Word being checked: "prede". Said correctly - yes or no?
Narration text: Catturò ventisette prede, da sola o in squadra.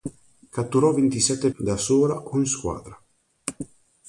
no